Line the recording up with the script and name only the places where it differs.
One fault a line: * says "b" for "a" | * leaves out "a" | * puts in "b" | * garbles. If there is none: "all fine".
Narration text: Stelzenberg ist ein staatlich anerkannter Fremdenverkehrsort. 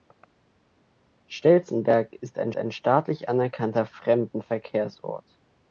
* puts in "ein"